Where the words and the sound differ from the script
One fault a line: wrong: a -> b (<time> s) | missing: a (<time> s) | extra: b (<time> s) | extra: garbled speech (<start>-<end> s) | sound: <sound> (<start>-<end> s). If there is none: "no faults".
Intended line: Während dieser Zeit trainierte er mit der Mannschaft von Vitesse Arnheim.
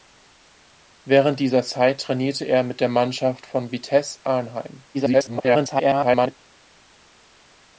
extra: garbled speech (4.9-6.4 s)